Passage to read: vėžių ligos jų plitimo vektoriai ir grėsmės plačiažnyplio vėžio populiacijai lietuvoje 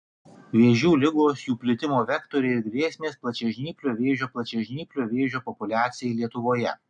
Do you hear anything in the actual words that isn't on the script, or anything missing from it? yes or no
yes